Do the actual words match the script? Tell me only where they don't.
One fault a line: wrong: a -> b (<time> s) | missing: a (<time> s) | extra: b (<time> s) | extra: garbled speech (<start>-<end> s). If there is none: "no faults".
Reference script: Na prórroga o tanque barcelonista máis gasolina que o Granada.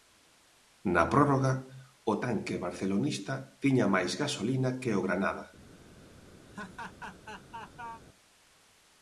extra: tiña (3.6 s)